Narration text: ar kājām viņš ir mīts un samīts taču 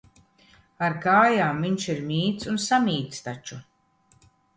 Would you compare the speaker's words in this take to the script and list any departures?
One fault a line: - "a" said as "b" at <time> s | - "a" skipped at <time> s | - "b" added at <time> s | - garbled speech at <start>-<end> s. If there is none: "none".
none